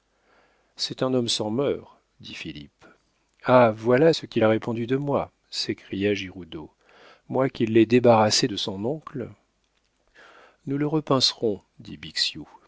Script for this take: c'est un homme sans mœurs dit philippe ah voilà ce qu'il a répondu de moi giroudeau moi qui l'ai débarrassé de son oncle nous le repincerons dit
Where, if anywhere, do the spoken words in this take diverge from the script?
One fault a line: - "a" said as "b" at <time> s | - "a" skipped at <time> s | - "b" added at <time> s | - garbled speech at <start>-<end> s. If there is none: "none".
- "s'écria" added at 5.5 s